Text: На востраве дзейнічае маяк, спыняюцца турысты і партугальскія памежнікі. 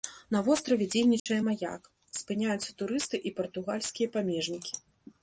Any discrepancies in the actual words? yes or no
no